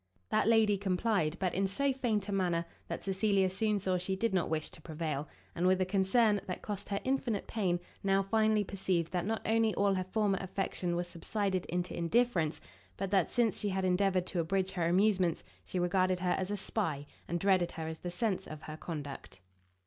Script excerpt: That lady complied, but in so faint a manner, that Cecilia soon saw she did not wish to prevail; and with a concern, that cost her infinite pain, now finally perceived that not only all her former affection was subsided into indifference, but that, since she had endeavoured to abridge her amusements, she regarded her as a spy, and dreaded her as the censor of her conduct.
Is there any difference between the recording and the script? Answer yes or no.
no